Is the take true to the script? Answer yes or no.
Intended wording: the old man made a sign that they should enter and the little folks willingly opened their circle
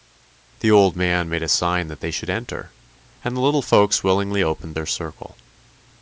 yes